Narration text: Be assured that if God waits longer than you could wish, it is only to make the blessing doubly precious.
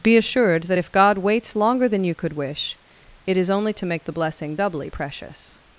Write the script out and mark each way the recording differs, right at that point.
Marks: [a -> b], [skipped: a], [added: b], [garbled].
Be assured that if God waits longer than you could wish, it is only to make the blessing doubly precious.